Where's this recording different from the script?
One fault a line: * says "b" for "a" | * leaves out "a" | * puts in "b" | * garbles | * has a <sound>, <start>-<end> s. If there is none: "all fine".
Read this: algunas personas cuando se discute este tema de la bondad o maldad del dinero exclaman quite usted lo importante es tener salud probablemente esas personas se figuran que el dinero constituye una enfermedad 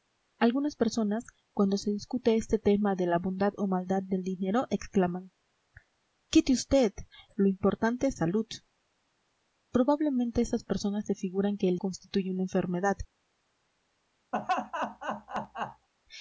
* leaves out "tener"
* leaves out "dinero"
* has a laugh, 14.3-15.9 s